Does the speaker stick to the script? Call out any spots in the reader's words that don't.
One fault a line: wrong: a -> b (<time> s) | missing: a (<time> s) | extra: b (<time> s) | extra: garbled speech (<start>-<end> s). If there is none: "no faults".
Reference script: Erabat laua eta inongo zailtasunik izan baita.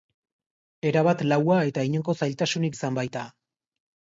no faults